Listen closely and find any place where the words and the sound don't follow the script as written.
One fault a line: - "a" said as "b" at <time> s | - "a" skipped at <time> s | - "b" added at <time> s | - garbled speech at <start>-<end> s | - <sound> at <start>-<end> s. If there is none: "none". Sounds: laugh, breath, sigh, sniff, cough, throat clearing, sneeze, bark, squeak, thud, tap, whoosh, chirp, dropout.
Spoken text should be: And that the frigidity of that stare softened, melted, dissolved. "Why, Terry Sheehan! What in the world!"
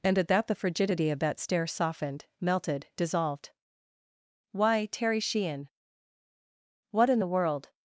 - "at" added at 0.2 s